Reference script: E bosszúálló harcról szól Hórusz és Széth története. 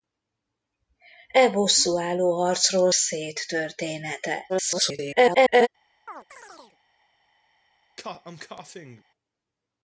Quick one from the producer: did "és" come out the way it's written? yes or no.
no